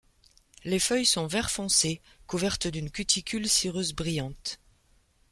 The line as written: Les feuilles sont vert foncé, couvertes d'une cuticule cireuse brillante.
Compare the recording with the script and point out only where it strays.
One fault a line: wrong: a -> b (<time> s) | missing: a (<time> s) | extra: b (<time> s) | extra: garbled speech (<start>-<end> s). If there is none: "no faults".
no faults